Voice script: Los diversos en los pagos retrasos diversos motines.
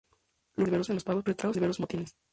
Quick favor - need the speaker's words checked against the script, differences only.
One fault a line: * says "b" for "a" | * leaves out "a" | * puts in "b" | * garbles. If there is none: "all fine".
all fine